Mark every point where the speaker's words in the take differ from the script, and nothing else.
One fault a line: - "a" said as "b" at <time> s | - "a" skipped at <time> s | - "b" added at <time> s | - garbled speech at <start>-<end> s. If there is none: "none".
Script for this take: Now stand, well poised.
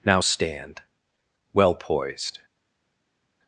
none